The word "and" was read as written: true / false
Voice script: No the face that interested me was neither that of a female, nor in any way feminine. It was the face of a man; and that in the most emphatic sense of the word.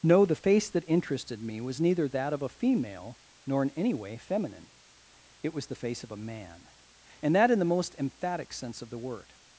true